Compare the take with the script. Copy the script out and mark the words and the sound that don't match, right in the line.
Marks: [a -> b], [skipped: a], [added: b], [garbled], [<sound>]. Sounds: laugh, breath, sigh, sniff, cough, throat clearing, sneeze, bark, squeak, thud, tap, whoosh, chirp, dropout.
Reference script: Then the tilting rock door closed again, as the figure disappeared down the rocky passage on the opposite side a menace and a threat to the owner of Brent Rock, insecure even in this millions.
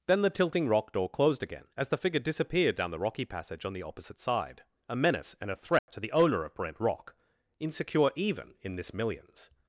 Then the tilting rock door closed again, as the figure disappeared down the rocky passage on the opposite side a menace and a threat [dropout] to the owner of Brent Rock, insecure even in this millions.